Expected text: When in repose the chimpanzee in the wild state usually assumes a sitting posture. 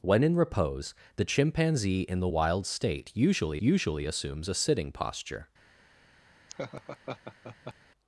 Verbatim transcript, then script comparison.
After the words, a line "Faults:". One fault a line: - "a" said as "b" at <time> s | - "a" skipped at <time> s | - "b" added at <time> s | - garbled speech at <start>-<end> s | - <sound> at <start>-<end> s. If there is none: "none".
When in repose the chimpanzee in the wild state usually usually assumes a sitting posture.
Faults:
- "usually" added at 3.6 s
- laugh at 6.5-7.7 s